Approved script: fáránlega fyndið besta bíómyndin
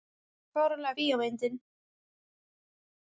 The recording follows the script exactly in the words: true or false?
false